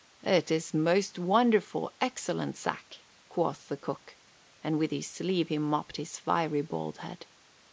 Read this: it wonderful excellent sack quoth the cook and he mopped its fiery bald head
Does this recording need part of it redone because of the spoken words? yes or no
yes